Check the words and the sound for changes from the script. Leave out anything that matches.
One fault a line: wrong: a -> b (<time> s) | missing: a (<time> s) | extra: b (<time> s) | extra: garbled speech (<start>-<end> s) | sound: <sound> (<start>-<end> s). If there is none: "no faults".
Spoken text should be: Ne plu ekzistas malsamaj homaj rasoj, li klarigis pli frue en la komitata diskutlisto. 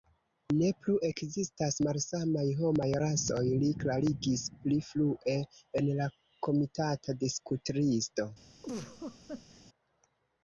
sound: laugh (8.6-9.6 s)